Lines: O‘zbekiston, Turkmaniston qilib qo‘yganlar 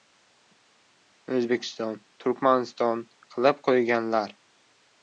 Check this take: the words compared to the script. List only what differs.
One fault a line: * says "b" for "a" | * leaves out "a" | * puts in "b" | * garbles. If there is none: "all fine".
all fine